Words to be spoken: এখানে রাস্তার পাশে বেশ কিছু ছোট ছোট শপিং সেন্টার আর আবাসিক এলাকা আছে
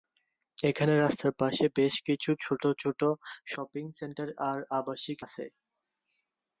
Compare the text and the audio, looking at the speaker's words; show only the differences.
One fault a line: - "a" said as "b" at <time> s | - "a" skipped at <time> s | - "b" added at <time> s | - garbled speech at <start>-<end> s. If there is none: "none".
- "এলাকা" skipped at 5.2 s